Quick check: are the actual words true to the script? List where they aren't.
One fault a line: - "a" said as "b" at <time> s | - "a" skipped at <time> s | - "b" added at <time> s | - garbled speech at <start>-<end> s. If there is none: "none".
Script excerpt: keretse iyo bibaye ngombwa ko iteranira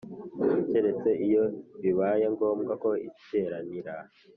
none